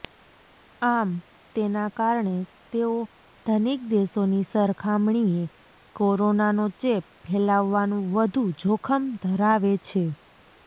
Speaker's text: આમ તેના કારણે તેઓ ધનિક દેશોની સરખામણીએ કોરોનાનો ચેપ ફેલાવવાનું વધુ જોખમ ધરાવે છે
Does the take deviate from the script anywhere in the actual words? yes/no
no